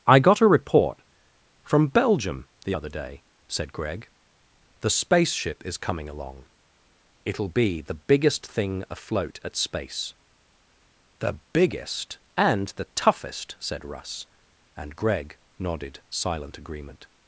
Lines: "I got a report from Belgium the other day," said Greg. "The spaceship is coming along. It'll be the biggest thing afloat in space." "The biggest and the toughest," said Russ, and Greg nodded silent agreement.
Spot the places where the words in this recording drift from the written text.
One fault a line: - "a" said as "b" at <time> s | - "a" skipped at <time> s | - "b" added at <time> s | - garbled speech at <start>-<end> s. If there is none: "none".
- "in" said as "at" at 9.4 s